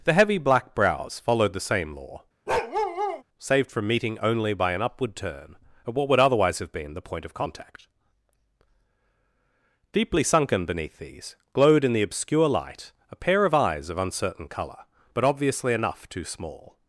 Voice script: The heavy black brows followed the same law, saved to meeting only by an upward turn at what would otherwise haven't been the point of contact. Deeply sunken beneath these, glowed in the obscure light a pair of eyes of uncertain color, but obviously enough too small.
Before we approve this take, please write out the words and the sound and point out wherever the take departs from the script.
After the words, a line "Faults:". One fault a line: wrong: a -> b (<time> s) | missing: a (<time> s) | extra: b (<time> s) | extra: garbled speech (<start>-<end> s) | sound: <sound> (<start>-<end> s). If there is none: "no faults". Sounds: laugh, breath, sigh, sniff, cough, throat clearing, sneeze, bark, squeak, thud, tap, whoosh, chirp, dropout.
The heavy black brows followed the same law, saved from meeting only by an upward turn at what would otherwise have been the point of contact. Deeply sunken beneath these, glowed in the obscure light a pair of eyes of uncertain color, but obviously enough too small.
Faults:
sound: bark (2.5-3.2 s)
wrong: to -> from (3.7 s)
wrong: haven't -> have (6.6 s)